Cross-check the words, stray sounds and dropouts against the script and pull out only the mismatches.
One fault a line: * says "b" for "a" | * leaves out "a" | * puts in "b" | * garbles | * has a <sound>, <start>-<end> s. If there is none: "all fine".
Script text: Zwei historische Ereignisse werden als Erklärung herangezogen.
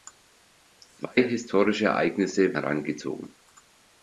* leaves out "werden als Erklärung"